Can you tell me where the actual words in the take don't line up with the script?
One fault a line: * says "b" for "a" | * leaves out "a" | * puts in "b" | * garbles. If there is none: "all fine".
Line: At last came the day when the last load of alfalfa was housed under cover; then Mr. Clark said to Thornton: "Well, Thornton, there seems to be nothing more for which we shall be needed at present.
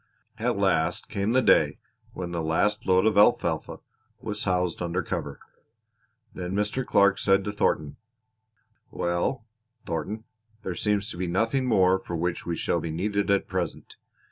all fine